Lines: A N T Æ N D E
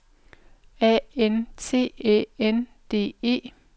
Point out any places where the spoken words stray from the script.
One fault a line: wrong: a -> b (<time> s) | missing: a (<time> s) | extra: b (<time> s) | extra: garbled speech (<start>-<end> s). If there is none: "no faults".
no faults